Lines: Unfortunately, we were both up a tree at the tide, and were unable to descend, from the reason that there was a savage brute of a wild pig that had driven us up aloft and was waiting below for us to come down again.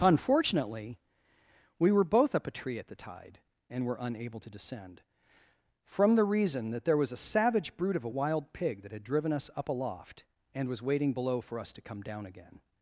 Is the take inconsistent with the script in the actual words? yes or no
no